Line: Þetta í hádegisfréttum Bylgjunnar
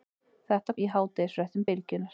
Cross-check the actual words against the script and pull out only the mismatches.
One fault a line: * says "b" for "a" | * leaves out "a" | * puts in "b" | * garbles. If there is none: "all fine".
all fine